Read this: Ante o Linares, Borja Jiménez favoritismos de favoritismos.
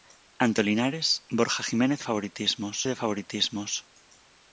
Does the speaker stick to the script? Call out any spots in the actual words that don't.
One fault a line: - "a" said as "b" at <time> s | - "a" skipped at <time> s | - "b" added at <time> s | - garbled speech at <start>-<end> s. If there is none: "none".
none